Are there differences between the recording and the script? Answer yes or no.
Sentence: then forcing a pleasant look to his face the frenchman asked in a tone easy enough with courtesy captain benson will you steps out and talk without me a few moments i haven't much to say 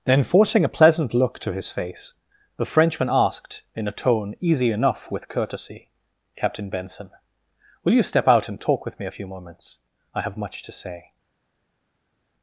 yes